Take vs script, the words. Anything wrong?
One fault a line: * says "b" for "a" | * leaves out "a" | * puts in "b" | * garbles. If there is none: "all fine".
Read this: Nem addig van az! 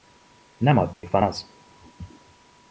all fine